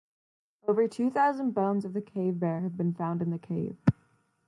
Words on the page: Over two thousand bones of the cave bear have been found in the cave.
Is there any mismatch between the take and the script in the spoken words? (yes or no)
no